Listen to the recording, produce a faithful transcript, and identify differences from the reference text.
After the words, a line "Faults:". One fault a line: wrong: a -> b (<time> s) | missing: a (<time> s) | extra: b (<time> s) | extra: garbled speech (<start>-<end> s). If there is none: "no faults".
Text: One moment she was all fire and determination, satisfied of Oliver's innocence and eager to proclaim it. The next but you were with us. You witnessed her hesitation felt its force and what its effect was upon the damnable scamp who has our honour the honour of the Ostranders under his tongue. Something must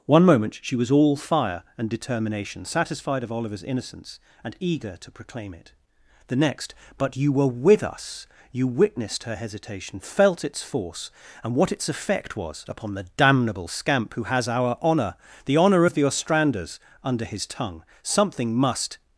One moment she was all fire and determination, satisfied of Oliver's innocence and eager to proclaim it. The next but you were with us. You witnessed her hesitation felt its force and what its effect was upon the damnable scamp who has our honour the honour of the Ostranders under his tongue. Something must
Faults:
no faults